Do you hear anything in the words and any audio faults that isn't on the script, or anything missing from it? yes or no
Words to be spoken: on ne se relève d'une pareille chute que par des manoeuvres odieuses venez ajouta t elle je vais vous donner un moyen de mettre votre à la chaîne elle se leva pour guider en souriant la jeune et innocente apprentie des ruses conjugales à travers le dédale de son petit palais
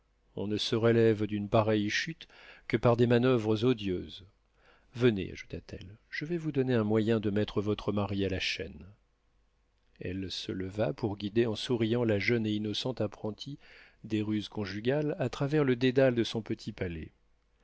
yes